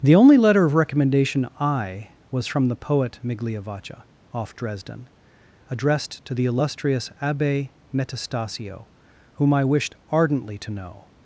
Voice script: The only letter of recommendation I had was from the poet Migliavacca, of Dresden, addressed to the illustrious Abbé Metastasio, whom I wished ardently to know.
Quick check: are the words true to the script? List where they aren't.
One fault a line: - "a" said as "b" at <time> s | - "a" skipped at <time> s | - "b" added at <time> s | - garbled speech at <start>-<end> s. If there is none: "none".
- "had" skipped at 2.1 s
- "of" said as "off" at 4.3 s